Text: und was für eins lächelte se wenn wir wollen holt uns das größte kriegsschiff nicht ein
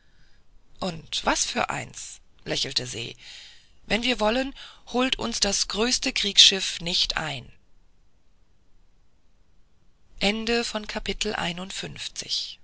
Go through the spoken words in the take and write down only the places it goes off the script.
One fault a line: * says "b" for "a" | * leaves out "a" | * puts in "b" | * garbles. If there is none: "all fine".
all fine